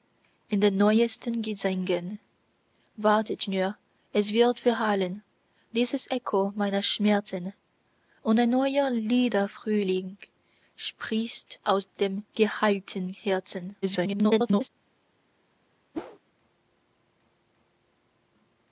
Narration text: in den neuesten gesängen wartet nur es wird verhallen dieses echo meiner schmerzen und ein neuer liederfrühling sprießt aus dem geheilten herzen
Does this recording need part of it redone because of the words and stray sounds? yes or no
yes